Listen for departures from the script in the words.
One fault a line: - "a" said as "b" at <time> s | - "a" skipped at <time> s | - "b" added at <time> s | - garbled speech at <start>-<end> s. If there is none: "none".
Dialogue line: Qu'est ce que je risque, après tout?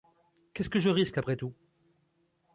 none